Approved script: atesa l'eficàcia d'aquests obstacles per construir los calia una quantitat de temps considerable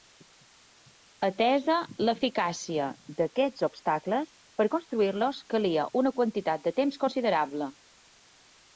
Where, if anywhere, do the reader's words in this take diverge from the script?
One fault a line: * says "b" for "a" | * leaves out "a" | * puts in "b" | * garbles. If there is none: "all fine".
all fine